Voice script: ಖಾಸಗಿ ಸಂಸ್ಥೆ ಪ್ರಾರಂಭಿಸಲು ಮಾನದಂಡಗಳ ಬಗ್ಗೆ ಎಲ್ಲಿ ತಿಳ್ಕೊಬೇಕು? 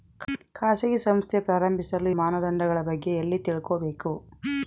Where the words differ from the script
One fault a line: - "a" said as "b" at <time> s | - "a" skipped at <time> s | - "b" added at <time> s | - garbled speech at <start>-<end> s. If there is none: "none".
none